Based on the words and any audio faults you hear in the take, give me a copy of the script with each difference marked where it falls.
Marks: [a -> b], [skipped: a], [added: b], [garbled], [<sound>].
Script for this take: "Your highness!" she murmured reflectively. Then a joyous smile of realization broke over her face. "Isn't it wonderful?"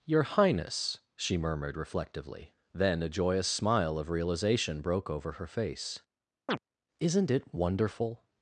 "Your highness!" she murmured reflectively. Then a joyous smile of realization broke over her face. [chirp] "Isn't it wonderful?"